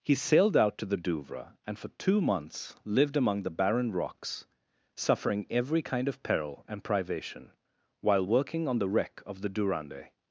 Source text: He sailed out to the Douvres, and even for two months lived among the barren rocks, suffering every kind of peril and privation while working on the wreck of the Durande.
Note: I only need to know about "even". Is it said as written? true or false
false